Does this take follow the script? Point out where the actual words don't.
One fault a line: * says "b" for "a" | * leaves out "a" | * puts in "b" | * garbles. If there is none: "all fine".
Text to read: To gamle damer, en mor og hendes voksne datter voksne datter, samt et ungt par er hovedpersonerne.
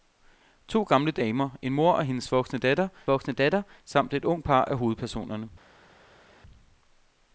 all fine